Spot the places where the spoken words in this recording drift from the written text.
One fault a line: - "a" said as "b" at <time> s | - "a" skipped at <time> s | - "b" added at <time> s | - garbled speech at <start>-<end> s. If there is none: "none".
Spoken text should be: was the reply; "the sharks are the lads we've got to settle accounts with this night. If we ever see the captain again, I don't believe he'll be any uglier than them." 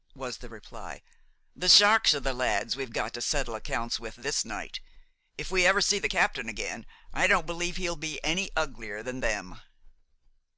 none